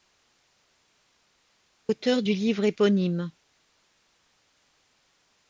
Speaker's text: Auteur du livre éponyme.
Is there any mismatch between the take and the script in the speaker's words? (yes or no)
no